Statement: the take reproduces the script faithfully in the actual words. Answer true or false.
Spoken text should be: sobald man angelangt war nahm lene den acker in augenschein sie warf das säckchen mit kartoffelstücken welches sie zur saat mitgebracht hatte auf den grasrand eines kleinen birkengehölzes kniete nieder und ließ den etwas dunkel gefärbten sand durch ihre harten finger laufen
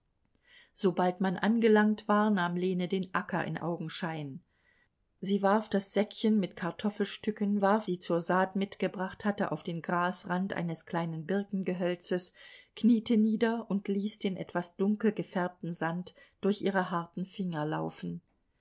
false